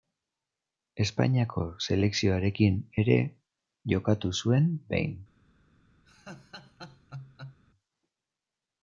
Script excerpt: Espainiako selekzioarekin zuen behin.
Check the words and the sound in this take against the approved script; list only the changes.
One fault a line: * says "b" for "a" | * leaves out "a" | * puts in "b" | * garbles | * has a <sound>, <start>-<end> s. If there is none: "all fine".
* puts in "ere jokatu"
* has a laugh, 6.1-7.6 s